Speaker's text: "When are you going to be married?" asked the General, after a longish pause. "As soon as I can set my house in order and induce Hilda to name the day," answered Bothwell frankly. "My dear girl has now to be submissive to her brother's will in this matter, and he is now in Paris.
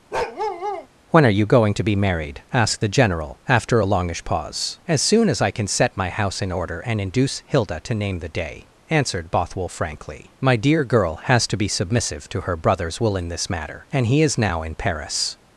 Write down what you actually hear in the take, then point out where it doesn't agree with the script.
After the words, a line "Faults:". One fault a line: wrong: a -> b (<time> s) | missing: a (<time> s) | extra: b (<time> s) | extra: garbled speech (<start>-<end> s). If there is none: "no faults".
"When are you going to be married?" asked the General, after a longish pause. "As soon as I can set my house in order and induce Hilda to name the day," answered Bothwell frankly. "My dear girl has to be submissive to her brother's will in this matter, and he is now in Paris.
Faults:
missing: now (11.5 s)